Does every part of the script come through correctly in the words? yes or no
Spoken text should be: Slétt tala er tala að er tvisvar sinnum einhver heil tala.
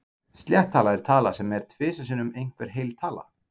no